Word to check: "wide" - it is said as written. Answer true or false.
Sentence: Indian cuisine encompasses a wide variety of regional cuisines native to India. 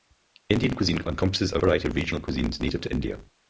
false